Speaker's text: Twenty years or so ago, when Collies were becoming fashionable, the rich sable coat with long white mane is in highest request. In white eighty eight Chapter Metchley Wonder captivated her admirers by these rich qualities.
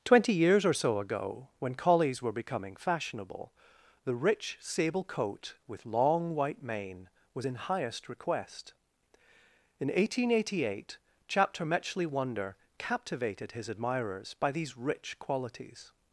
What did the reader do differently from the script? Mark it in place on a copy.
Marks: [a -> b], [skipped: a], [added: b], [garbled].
Twenty years or so ago, when Collies were becoming fashionable, the rich sable coat with long white mane [is -> was] in highest request. In [white -> eighteen] eighty eight Chapter Metchley Wonder captivated [her -> his] admirers by these rich qualities.